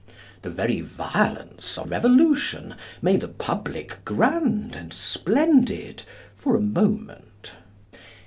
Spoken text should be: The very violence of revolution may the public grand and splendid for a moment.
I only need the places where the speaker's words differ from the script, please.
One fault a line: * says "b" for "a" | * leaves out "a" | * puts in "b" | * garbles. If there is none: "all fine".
all fine